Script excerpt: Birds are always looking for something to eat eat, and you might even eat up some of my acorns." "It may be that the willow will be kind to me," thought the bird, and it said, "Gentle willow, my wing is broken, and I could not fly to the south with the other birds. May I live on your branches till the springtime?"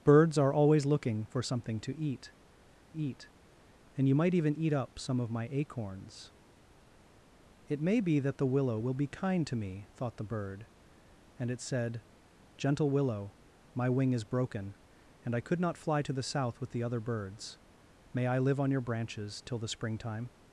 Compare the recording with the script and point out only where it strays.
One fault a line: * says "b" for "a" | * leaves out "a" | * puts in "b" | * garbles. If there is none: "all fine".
all fine